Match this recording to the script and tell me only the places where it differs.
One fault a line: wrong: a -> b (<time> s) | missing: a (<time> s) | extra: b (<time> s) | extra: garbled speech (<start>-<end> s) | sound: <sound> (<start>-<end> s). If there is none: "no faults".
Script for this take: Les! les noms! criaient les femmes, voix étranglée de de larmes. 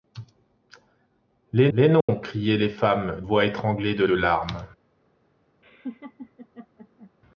sound: dropout (2.0-2.1 s)
sound: laugh (5.6-7.1 s)